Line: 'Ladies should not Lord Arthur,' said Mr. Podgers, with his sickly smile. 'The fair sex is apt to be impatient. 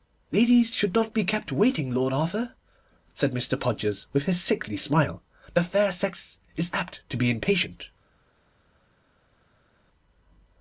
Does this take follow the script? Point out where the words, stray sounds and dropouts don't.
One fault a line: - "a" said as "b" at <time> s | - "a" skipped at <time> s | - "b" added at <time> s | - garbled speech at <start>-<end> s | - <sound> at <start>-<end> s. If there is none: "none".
- "be kept waiting" added at 1.1 s